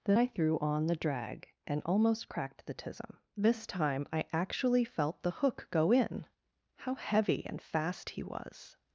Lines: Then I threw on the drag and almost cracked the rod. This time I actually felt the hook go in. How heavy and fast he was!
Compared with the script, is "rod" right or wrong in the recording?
wrong